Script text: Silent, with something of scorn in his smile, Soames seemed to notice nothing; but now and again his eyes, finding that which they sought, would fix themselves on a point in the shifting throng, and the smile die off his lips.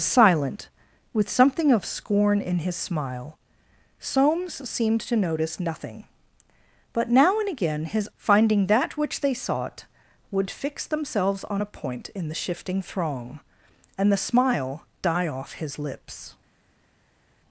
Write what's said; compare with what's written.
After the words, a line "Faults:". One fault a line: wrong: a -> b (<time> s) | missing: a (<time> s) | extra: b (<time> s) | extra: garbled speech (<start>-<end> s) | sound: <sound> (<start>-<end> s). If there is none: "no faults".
Silent, with something of scorn in his smile, Soames seemed to notice nothing; but now and again his finding that which they sought, would fix themselves on a point in the shifting throng, and the smile die off his lips.
Faults:
missing: eyes (8.1 s)